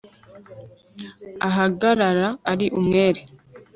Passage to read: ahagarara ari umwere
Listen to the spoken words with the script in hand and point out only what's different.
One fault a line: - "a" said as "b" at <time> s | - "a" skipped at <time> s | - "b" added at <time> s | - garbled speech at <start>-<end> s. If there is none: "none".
none